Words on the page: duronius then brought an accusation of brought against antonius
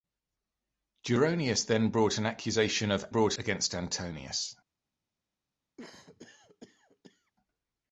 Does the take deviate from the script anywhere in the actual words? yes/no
no